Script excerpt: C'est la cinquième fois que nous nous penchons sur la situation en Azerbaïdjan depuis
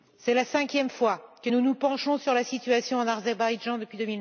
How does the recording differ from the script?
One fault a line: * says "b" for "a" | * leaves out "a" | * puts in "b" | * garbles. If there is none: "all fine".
all fine